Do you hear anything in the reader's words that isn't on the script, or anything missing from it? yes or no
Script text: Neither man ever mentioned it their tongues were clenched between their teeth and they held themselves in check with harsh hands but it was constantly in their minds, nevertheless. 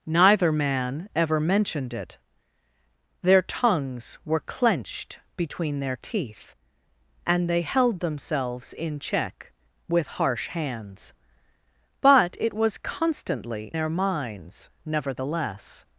yes